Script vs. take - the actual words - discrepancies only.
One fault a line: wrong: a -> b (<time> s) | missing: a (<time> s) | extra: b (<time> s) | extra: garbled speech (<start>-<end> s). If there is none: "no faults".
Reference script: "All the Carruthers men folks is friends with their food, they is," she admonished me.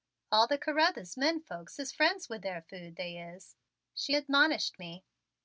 no faults